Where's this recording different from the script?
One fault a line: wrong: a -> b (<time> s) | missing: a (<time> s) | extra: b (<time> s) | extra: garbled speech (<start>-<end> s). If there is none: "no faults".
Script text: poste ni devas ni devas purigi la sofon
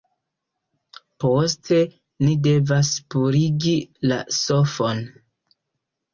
missing: ni devas (2.9 s)